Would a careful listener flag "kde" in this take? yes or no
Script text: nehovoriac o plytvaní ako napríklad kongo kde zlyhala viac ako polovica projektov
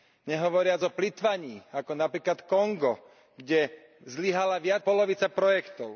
no